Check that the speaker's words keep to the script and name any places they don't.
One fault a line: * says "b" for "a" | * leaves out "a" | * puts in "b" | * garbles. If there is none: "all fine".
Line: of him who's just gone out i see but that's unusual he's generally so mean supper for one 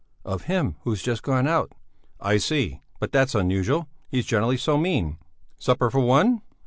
all fine